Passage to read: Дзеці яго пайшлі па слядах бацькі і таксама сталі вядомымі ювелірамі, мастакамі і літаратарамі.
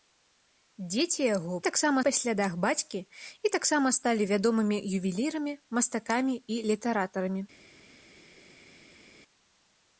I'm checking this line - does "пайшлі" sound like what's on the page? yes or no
no